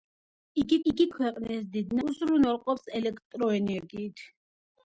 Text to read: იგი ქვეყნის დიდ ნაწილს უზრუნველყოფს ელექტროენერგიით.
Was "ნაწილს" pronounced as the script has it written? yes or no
no